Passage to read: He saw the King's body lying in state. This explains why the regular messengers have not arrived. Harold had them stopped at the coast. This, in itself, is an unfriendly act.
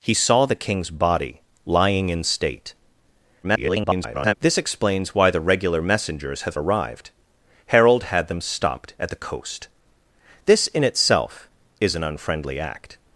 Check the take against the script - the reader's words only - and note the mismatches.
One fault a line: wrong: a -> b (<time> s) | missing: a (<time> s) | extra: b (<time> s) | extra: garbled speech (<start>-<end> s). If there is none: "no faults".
extra: garbled speech (3.4-4.3 s)
missing: not (6.6 s)